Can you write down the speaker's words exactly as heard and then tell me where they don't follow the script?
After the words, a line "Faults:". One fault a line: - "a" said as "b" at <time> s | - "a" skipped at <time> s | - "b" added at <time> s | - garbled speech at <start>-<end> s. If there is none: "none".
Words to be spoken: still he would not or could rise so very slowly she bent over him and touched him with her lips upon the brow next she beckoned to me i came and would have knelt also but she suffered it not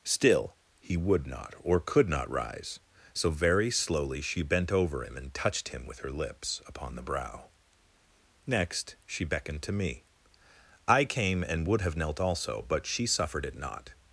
still he would not or could not rise so very slowly she bent over him and touched him with her lips upon the brow next she beckoned to me i came and would have knelt also but she suffered it not
Faults:
- "not" added at 2.1 s